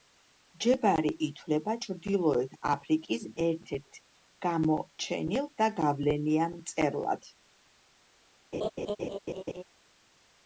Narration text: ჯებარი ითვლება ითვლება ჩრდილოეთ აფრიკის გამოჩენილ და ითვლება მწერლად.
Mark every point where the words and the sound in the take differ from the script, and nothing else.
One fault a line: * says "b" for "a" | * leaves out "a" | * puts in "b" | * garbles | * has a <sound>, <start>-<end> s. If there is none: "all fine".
* leaves out "ითვლება"
* puts in "ერთ ერთ"
* says "გავლენიან" for "ითვლება"
* has a laugh, 8.5-9.6 s